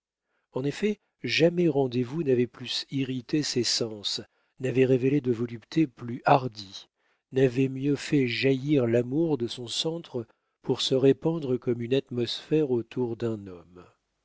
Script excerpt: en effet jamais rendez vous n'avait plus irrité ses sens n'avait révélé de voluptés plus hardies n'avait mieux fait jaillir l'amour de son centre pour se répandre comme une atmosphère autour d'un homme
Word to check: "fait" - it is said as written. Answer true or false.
true